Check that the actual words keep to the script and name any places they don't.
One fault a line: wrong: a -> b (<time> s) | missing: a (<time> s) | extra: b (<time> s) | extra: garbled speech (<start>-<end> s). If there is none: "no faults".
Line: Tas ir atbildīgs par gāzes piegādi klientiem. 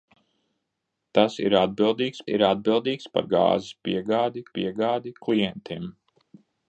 extra: ir atbildīgs (2.3 s)
extra: piegādi (4.6 s)